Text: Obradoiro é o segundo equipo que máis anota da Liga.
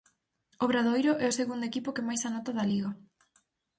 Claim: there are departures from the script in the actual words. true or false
false